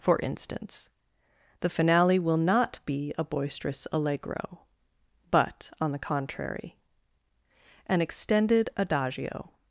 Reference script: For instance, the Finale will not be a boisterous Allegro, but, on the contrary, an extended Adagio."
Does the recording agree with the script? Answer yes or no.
yes